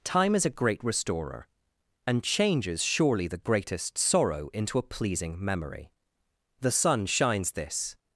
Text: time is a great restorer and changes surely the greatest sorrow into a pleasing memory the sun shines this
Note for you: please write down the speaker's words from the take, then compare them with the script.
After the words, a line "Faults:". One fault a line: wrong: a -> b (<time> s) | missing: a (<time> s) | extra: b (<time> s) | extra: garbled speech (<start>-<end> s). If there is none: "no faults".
time is a great restorer and changes surely the greatest sorrow into a pleasing memory the sun shines this
Faults:
no faults